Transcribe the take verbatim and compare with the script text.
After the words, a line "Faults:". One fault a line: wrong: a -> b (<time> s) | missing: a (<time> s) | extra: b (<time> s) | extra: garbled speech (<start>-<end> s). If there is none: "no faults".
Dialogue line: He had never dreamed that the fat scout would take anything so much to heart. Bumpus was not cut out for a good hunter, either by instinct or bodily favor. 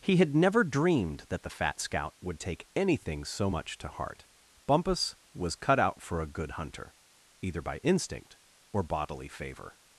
He had never dreamed that the fat scout would take anything so much to heart. Bumpus was cut out for a good hunter, either by instinct or bodily favor.
Faults:
missing: not (5.5 s)